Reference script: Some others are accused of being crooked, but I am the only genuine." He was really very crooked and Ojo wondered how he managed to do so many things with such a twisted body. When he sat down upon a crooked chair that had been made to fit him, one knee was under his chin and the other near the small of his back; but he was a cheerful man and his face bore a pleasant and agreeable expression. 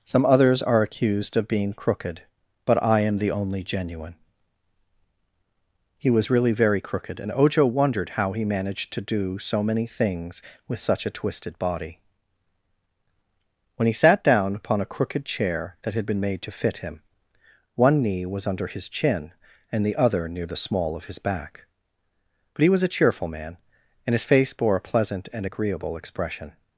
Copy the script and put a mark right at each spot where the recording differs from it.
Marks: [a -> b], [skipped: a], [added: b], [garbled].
Some others are accused of being crooked, but I am the only genuine." He was really very crooked and Ojo wondered how he managed to do so many things with such a twisted body. When he sat down upon a crooked chair that had been made to fit him, one knee was under his chin and the other near the small of his back; but he was a cheerful man and his face bore a pleasant and agreeable expression.